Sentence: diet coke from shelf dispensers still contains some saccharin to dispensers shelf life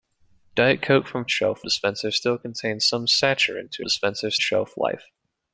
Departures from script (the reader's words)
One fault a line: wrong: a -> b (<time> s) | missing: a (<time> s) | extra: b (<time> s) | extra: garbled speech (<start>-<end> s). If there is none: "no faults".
no faults